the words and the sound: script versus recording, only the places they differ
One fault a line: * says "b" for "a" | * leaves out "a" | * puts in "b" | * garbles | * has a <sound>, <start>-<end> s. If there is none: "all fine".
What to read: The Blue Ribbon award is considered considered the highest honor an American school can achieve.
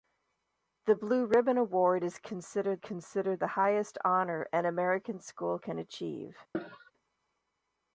* has a cough, 6.5-6.9 s